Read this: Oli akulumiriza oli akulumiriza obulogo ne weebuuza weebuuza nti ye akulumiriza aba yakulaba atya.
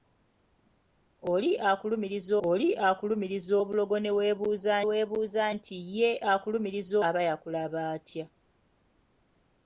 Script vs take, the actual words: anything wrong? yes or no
no